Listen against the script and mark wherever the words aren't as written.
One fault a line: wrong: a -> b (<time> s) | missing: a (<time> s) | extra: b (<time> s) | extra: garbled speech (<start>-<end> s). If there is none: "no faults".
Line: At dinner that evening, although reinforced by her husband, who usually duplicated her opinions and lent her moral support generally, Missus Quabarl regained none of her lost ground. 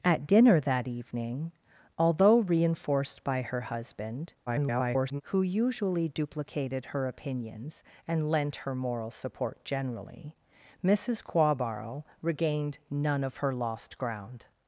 extra: garbled speech (4.5-5.2 s)